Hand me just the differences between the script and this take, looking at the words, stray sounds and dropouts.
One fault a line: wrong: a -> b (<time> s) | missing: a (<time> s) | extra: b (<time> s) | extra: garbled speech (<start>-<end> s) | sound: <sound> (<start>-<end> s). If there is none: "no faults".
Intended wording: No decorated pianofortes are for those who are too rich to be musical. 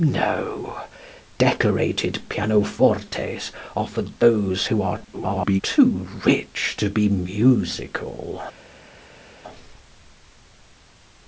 extra: garbled speech (5.1-5.6 s)